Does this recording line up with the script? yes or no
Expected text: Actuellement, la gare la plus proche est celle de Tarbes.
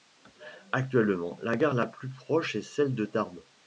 yes